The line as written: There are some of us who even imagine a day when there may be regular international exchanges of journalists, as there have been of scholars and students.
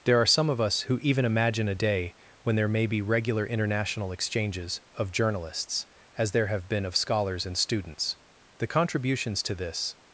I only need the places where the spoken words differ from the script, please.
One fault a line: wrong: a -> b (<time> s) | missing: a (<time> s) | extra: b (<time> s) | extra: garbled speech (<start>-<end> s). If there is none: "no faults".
extra: The contributions to this (8.6 s)